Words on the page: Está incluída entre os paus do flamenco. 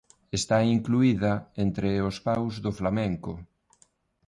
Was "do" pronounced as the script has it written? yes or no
yes